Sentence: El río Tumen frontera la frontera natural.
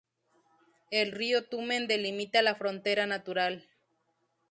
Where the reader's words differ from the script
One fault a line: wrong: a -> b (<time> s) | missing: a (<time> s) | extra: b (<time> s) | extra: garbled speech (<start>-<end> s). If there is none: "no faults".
wrong: frontera -> delimita (1.9 s)